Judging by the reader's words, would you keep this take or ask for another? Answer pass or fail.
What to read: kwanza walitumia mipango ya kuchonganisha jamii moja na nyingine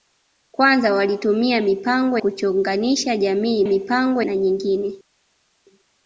fail